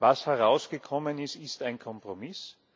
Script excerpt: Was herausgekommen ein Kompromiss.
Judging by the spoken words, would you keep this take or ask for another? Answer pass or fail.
fail